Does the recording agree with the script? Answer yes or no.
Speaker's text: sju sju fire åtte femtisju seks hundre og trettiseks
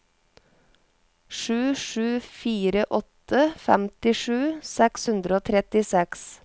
yes